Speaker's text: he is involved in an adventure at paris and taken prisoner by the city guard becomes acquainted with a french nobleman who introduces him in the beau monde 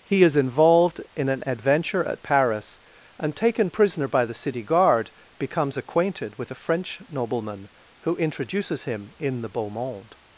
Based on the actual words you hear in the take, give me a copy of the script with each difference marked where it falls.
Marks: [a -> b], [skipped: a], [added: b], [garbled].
he is involved in an adventure at paris and taken prisoner by the city guard becomes acquainted with a french nobleman who introduces him in the beau monde